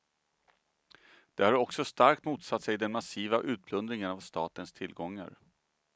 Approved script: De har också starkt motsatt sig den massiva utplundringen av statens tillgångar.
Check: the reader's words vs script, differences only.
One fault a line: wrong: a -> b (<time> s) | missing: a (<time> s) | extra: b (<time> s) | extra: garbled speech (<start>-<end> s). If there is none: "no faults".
no faults